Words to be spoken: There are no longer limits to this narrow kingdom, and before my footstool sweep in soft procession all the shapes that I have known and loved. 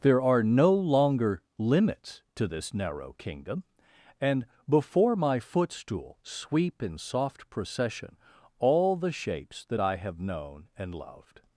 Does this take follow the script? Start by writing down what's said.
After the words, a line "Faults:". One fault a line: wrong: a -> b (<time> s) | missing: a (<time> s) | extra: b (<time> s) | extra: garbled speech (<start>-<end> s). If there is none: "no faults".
There are no longer limits to this narrow kingdom, and before my footstool sweep in soft procession all the shapes that I have known and loved.
Faults:
no faults